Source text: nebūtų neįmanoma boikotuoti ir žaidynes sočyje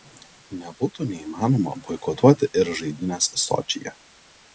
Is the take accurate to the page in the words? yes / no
yes